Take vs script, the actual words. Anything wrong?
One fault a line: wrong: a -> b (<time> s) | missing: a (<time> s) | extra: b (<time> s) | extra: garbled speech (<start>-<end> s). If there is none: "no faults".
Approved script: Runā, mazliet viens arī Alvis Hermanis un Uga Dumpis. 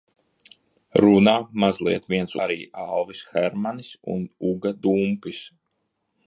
no faults